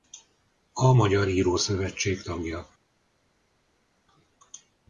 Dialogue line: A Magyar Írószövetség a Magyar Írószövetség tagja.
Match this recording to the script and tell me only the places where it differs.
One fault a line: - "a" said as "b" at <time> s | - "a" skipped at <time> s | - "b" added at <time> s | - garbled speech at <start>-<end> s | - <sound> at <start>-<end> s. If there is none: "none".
- "a Magyar Írószövetség" skipped at 2.2 s